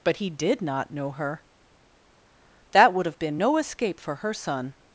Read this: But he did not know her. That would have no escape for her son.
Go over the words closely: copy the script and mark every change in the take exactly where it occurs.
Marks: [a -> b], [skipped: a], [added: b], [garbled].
But he did not know her. That would have [added: been] no escape for her son.